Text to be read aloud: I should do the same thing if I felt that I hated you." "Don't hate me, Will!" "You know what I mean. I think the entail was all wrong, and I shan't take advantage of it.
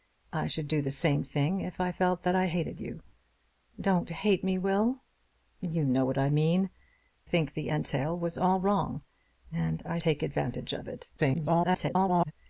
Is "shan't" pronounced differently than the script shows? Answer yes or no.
yes